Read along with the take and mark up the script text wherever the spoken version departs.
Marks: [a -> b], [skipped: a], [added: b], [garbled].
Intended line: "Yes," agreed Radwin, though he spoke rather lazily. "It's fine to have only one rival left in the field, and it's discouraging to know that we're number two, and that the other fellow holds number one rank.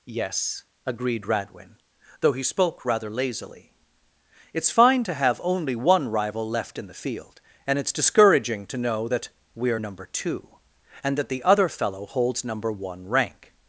"Yes," agreed Radwin, though he spoke rather lazily. "It's fine to have only one rival left in the field, and it's discouraging to know that we're number two, and that the other fellow holds number one rank.